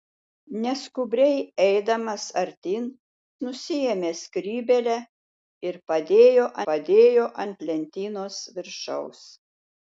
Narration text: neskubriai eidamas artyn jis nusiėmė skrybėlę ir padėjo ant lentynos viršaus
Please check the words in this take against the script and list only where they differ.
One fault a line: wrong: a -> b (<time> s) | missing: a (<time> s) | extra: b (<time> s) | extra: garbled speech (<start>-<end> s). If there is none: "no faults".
missing: jis (2.9 s)
extra: padėjo (6.7 s)